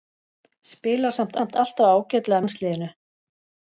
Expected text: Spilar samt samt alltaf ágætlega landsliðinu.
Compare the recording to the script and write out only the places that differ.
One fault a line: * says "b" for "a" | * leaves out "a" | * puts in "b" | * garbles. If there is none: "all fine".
all fine